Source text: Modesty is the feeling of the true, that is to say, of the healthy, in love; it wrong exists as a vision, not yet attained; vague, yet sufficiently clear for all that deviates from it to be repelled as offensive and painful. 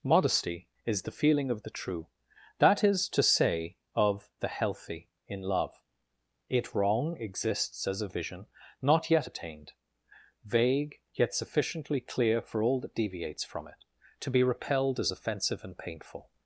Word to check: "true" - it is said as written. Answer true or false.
true